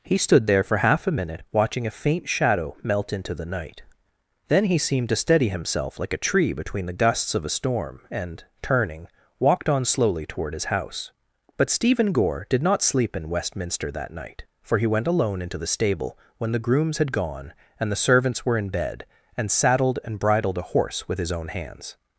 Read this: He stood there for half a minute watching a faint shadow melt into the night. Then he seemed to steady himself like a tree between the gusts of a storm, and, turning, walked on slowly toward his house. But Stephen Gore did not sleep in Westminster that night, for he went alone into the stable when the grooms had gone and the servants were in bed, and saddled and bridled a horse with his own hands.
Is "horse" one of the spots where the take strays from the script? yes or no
no